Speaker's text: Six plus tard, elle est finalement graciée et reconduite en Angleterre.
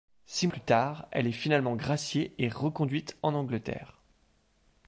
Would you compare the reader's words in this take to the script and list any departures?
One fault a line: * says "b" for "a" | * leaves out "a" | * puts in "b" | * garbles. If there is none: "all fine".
all fine